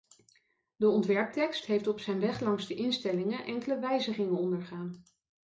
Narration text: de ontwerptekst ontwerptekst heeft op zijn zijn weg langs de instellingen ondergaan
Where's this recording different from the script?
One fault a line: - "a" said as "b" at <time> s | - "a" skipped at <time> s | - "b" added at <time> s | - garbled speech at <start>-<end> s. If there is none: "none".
- "ontwerptekst" skipped at 1.6 s
- "zijn" skipped at 2.2 s
- "enkele wijzigingen" added at 3.4 s